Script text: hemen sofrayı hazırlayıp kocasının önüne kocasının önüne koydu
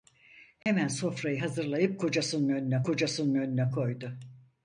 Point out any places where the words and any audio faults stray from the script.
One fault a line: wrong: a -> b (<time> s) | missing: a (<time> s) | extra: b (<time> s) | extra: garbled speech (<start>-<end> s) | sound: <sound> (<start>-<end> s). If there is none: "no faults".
sound: dropout (0.6-0.7 s)